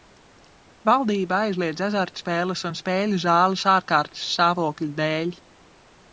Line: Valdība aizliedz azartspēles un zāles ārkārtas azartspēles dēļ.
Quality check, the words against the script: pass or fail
fail